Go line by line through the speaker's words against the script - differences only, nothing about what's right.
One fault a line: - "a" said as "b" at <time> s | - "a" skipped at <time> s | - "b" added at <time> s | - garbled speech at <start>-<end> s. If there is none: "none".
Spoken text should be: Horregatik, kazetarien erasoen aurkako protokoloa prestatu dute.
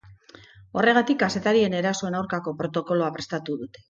none